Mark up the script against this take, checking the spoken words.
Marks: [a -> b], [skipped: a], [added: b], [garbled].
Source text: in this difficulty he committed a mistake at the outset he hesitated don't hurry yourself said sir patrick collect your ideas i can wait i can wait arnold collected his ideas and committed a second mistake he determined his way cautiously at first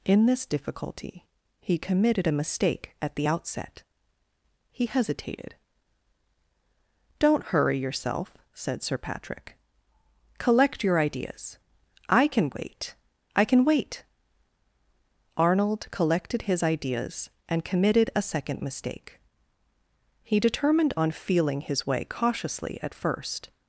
in this difficulty he committed a mistake at the outset he hesitated don't hurry yourself said sir patrick collect your ideas i can wait i can wait arnold collected his ideas and committed a second mistake he determined [added: on feeling] his way cautiously at first